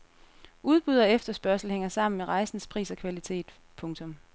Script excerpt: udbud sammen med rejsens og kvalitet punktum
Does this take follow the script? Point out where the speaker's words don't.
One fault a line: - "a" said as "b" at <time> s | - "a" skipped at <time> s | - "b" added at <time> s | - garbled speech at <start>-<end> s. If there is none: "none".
- "og efterspørgsel hænger" added at 1.0 s
- "pris" added at 2.7 s